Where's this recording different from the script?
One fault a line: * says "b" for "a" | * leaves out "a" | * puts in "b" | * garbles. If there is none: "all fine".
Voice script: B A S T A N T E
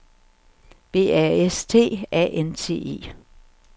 all fine